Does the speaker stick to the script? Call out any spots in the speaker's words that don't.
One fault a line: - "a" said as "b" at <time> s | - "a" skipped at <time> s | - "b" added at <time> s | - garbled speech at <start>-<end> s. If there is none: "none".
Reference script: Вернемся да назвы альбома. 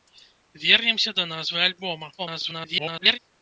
- garbled speech at 2.2-3.2 s